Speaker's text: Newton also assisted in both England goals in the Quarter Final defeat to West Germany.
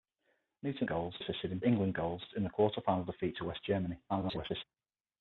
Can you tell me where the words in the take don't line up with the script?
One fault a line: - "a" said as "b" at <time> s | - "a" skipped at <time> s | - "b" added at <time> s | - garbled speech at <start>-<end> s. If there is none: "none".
- "also" said as "goals" at 0.9 s
- "both" skipped at 1.6 s
- garbled speech at 4.1-4.6 s